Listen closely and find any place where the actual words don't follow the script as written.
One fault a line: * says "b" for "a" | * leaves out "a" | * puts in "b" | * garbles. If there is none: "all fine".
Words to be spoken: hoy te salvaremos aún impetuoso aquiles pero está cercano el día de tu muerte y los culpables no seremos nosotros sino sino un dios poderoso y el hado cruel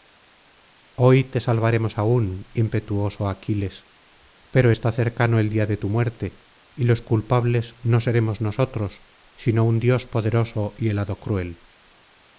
* leaves out "sino"